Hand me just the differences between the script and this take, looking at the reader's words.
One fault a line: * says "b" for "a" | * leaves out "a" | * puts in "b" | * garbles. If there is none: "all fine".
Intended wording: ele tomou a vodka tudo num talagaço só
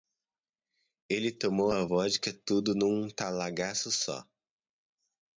all fine